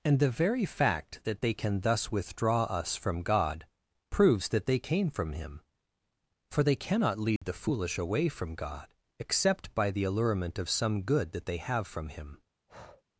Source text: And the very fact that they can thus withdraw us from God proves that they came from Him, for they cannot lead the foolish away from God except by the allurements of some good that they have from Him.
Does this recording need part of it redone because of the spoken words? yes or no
yes